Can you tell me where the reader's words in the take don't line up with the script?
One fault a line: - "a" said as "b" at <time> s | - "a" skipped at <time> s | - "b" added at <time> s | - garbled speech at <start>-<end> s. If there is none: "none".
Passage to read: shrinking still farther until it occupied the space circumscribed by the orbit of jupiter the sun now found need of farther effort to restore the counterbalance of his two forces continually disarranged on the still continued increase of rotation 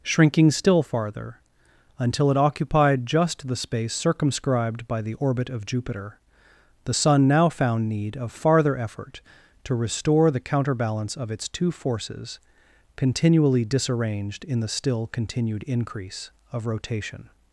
- "just" added at 3.0 s
- "his" said as "its" at 11.3 s
- "on" said as "in" at 14.4 s